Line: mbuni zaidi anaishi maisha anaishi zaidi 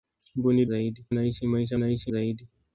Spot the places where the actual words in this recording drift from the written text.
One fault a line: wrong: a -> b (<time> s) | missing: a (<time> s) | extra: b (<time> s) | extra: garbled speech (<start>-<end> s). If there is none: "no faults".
no faults